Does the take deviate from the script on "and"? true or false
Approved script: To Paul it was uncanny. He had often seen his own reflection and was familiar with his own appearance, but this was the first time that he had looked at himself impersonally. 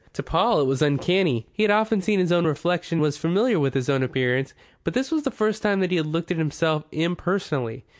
true